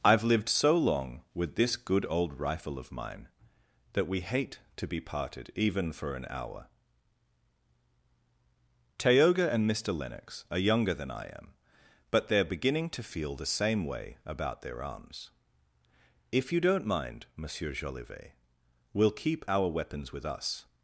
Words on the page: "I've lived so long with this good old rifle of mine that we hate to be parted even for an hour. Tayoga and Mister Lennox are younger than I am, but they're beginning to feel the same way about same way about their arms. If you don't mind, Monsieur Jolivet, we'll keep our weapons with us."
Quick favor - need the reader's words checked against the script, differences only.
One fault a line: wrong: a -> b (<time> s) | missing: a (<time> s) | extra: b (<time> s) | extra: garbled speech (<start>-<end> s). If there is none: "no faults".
missing: same way about (14.6 s)